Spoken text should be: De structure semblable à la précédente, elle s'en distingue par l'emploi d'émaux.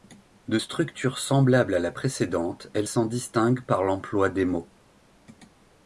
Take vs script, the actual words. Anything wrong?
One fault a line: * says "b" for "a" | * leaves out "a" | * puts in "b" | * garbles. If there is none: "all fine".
all fine